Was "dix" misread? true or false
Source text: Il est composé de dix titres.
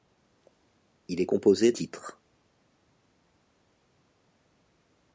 true